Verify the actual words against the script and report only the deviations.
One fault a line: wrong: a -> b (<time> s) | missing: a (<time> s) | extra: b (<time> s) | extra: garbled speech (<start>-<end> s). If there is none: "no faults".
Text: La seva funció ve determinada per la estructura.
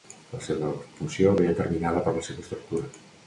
extra: seva (2.3 s)